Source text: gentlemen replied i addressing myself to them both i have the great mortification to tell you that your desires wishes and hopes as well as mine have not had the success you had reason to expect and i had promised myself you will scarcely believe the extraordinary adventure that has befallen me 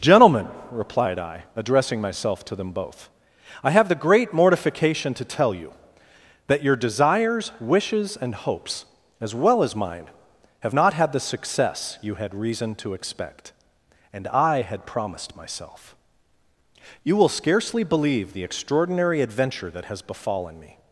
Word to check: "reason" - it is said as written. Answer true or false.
true